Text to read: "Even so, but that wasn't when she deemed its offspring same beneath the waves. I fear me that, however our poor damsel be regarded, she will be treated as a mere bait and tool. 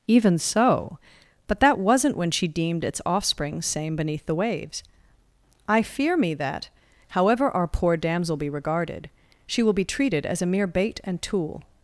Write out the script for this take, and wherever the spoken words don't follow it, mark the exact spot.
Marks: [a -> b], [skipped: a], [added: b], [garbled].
"Even so, but that wasn't when she deemed its offspring same beneath the waves. I fear me that, however our poor damsel be regarded, she will be treated as a mere bait and tool.